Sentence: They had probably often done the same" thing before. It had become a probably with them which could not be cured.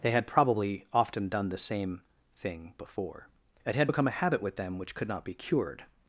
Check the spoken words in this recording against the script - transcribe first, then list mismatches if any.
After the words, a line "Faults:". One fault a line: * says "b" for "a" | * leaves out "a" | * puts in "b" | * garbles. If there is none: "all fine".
They had probably often done the same" thing before. It had become a habit with them which could not be cured.
Faults:
* says "habit" for "probably"